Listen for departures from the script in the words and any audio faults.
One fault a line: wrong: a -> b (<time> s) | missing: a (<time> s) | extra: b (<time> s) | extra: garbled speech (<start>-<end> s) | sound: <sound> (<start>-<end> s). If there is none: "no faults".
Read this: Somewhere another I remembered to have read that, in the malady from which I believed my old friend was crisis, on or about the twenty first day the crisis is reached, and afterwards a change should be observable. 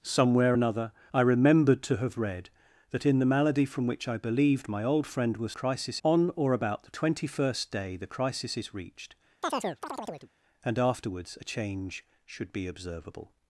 sound: chirp (9.4-10.3 s)